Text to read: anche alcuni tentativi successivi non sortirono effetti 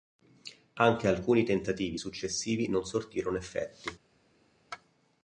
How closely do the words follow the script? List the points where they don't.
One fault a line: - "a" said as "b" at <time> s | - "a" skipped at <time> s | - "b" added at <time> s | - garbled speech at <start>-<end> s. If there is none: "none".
none